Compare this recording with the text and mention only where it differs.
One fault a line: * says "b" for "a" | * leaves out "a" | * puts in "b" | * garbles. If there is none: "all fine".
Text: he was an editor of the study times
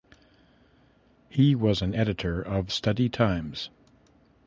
* leaves out "the"